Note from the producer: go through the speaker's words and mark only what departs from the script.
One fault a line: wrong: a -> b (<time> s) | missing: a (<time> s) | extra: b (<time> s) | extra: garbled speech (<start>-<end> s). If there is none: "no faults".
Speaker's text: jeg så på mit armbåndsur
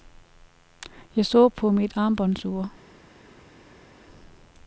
no faults